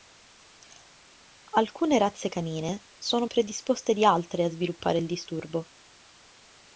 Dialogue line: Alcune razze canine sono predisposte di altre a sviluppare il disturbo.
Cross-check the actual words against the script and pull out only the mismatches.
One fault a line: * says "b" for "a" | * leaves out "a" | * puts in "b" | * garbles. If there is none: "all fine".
all fine